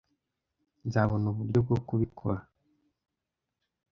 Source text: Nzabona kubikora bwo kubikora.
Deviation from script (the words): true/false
true